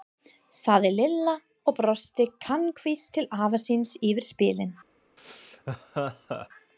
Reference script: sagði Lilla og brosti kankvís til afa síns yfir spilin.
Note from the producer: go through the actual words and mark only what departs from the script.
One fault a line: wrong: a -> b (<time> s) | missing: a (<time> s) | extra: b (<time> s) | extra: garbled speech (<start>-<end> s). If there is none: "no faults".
no faults